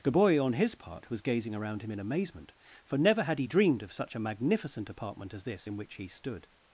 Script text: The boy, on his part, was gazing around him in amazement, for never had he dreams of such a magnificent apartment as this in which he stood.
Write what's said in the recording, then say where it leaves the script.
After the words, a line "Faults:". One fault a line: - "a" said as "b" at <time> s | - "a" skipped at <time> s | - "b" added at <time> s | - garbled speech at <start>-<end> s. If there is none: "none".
The boy, on his part, was gazing around him in amazement, for never had he dreamed of such a magnificent apartment as this in which he stood.
Faults:
- "dreams" said as "dreamed" at 3.4 s